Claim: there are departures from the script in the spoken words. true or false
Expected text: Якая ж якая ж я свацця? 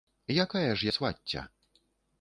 true